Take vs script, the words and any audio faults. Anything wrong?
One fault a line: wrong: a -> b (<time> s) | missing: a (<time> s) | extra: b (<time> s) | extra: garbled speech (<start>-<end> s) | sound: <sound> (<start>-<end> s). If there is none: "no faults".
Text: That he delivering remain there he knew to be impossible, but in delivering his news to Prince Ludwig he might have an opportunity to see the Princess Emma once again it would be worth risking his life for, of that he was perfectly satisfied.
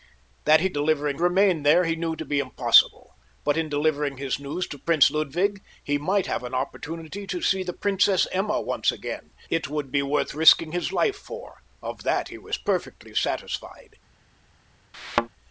sound: thud (14.9-15.3 s)